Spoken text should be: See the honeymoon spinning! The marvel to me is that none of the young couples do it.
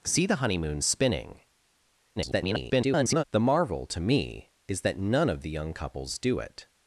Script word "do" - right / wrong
right